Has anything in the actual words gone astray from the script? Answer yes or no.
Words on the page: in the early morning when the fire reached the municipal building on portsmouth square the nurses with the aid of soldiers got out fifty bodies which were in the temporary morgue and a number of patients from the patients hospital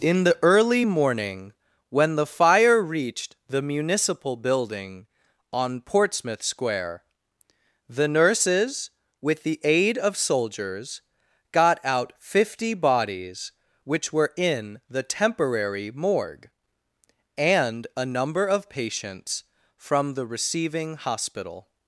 yes